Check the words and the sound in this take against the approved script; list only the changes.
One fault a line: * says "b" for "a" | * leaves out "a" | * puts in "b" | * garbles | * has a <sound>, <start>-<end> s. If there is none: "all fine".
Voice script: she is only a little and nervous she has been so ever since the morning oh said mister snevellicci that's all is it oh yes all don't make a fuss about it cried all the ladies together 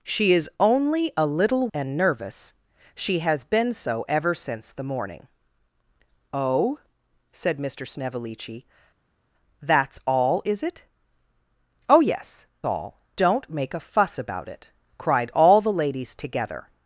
all fine